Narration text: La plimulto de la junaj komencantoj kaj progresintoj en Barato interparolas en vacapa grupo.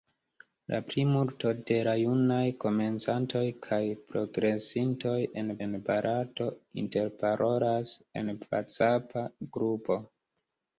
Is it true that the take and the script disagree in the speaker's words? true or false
true